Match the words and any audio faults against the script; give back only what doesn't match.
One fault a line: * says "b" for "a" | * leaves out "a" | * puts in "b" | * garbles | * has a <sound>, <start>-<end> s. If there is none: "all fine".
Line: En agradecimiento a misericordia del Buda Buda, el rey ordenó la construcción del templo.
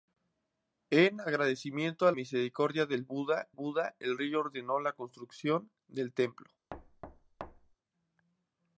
* has a thud, 6.7-7.8 s